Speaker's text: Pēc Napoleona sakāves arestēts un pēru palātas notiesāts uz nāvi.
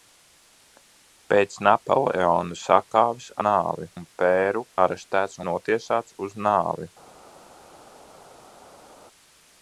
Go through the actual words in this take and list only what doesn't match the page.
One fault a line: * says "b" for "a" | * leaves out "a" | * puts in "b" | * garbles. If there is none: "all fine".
* says "nāvi" for "arestēts"
* says "arestēts" for "palātas"